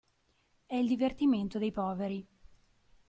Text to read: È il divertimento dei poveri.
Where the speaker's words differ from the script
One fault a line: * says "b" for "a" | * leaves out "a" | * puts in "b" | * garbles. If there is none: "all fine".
all fine